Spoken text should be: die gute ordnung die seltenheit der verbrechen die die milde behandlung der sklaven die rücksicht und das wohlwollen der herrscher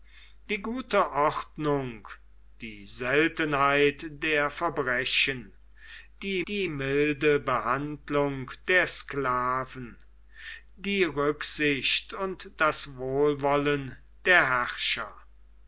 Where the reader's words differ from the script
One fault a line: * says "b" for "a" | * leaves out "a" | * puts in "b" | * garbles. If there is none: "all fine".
all fine